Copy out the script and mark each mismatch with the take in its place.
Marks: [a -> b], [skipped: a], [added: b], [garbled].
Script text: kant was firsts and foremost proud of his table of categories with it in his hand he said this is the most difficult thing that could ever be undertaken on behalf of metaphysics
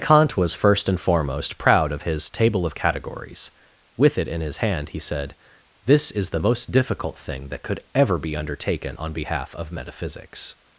kant was [firsts -> first] and foremost proud of his table of categories with it in his hand he said this is the most difficult thing that could ever be undertaken on behalf of metaphysics